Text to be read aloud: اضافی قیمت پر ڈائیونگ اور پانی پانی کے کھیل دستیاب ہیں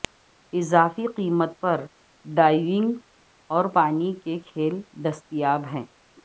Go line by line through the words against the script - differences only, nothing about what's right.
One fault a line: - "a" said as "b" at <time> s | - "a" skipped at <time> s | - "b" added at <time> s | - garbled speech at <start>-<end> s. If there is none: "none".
- "پانی" skipped at 4.1 s